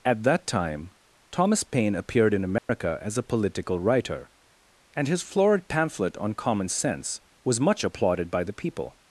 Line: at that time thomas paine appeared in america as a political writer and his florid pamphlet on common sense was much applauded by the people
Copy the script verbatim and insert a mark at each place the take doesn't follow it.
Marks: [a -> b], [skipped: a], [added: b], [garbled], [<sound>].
at that time thomas paine appeared in america [dropout] as a political writer and his florid pamphlet on common sense was much applauded by the people